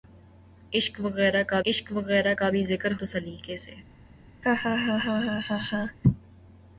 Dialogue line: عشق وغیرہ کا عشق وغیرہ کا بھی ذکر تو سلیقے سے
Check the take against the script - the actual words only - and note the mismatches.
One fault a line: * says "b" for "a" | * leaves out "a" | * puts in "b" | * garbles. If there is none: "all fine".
all fine